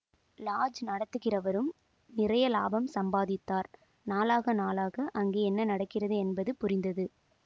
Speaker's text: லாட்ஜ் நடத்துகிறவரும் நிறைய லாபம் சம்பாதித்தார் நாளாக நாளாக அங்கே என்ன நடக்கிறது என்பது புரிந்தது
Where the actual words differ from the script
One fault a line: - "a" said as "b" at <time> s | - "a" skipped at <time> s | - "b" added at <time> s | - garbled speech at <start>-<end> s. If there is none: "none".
none